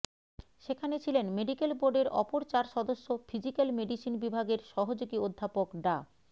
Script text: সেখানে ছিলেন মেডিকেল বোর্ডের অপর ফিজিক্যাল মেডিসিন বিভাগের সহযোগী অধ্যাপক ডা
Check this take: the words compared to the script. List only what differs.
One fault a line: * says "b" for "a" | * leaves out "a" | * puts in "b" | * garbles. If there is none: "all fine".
* puts in "চার সদস্য"